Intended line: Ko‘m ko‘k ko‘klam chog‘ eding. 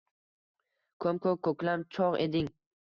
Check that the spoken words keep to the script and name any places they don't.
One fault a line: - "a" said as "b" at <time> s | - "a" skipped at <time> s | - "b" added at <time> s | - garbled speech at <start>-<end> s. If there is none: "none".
none